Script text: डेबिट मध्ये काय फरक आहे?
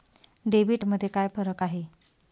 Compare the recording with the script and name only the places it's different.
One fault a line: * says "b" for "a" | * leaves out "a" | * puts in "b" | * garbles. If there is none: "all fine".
all fine